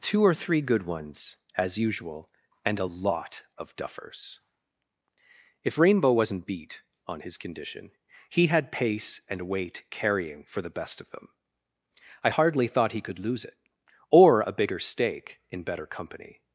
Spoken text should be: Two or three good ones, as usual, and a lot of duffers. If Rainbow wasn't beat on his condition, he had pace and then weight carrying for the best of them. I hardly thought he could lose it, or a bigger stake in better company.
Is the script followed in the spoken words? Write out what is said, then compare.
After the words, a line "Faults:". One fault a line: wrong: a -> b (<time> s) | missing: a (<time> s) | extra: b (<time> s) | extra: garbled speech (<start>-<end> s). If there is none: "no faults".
Two or three good ones, as usual, and a lot of duffers. If Rainbow wasn't beat on his condition, he had pace and weight carrying for the best of them. I hardly thought he could lose it, or a bigger stake in better company.
Faults:
missing: then (9.5 s)